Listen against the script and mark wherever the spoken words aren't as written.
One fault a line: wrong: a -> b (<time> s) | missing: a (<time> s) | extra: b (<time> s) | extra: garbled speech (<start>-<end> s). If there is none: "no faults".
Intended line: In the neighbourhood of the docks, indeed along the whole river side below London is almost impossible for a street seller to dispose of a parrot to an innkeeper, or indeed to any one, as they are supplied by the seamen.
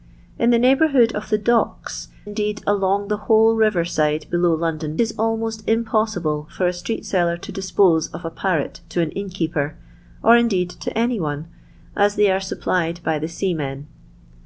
no faults